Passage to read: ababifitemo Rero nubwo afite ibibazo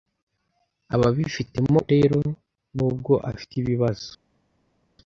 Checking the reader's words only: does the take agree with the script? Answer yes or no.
yes